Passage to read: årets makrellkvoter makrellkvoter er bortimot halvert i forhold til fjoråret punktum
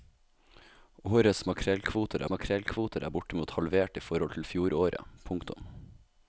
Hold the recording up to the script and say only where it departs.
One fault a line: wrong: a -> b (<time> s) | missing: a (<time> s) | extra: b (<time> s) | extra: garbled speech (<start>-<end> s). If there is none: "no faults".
no faults